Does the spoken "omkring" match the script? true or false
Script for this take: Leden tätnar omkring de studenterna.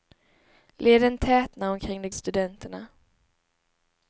true